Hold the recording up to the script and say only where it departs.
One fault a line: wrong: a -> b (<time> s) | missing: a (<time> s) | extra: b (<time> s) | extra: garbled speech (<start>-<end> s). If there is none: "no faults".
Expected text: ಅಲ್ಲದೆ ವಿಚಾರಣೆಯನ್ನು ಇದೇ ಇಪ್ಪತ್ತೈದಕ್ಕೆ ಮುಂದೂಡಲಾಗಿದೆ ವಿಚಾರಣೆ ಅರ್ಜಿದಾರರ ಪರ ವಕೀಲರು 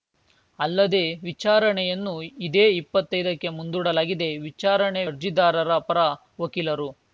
no faults